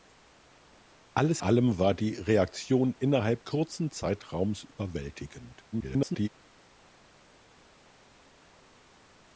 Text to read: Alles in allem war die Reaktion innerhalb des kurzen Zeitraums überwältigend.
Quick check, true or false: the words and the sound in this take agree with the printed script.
false